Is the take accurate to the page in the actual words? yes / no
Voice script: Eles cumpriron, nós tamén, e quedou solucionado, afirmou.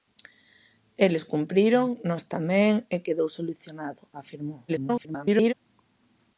no